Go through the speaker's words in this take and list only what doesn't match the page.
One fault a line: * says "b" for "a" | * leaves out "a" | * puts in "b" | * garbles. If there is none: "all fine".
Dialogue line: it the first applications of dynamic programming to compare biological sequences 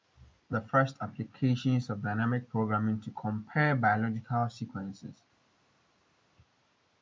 all fine